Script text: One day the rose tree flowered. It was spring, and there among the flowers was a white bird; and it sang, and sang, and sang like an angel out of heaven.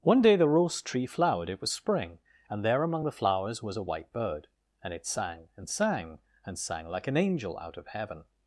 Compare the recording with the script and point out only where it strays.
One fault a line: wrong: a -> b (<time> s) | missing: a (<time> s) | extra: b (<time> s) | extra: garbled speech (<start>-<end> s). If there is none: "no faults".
no faults